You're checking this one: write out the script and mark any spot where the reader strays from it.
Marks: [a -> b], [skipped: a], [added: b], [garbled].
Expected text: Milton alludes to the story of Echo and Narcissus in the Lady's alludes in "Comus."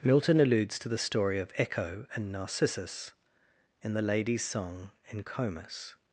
Milton alludes to the story of Echo and Narcissus in the Lady's [alludes -> song] in "Comus."